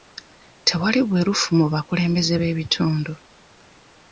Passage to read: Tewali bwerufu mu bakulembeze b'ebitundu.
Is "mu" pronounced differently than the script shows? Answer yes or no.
no